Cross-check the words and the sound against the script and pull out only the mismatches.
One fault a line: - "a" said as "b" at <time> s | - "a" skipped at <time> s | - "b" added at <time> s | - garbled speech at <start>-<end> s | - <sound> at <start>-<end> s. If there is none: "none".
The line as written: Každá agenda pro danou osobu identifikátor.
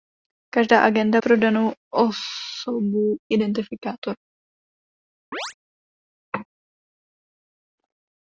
- chirp at 5.3-5.5 s